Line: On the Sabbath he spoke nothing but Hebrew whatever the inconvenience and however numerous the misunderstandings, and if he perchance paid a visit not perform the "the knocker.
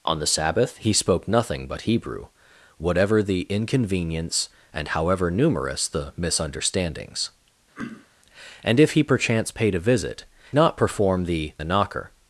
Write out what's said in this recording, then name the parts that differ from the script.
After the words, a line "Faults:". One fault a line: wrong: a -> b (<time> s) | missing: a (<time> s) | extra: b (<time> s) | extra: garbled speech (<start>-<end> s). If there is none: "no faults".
On the Sabbath he spoke nothing but Hebrew whatever the inconvenience and however numerous the misunderstandings, and if he perchance paid a visit not perform the "the knocker.
Faults:
no faults